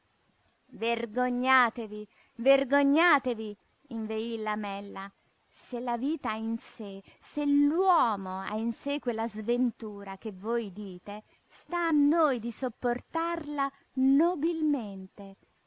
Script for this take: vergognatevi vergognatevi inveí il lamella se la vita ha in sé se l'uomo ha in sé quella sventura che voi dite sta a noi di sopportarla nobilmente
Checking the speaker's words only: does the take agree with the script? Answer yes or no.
yes